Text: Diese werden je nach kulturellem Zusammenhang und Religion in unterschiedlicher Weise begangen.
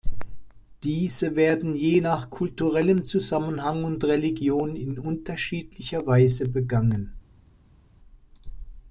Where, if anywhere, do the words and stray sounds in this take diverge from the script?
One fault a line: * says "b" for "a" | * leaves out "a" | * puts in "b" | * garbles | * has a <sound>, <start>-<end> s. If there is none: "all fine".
all fine